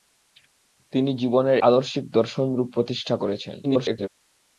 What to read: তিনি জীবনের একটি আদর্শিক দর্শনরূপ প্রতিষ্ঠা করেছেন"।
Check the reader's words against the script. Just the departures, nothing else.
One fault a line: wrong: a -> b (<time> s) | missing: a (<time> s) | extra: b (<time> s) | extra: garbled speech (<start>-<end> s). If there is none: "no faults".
missing: একটি (1.6 s)
extra: garbled speech (3.6-4.1 s)